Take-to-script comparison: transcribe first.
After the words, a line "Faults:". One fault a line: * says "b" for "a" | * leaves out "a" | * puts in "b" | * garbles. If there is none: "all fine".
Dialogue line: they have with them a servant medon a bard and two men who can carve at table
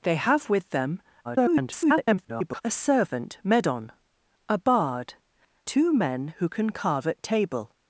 they have with them [garbled] a servant medon a bard two men who can carve at table
Faults:
* garbles
* leaves out "and"